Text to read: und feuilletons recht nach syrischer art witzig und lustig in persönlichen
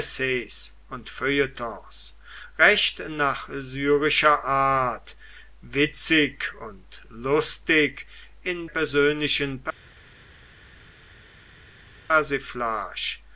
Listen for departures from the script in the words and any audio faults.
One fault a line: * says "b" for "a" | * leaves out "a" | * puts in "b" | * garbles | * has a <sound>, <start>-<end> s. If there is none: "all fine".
all fine